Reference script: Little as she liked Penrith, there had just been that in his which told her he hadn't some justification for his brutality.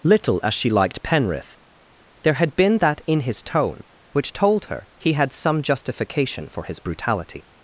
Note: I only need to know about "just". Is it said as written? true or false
false